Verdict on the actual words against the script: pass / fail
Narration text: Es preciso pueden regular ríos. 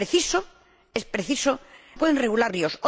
pass